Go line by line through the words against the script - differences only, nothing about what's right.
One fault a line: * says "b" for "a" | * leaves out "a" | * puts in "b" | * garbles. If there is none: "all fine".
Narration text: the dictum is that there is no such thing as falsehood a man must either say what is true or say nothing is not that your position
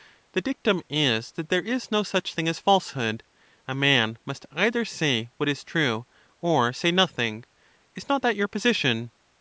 all fine